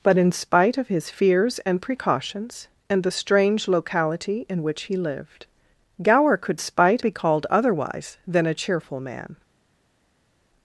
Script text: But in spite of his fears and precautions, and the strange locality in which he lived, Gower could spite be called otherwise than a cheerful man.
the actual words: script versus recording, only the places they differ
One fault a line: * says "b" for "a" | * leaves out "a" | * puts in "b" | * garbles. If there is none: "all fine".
all fine